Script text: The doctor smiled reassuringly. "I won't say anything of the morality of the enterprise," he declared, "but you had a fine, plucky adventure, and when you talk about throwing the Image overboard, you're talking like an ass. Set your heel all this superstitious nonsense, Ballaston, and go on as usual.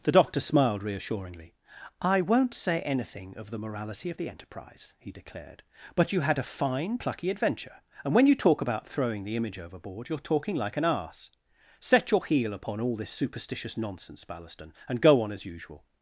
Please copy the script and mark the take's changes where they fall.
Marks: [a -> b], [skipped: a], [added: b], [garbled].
The doctor smiled reassuringly. "I won't say anything of the morality of the enterprise," he declared, "but you had a fine, plucky adventure, and when you talk about throwing the Image overboard, you're talking like an ass. Set your heel [added: upon] all this superstitious nonsense, Ballaston, and go on as usual.